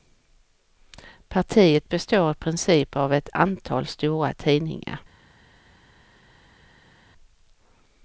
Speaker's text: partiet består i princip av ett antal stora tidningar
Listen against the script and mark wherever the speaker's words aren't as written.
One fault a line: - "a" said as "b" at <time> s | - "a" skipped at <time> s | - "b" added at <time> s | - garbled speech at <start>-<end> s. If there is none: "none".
none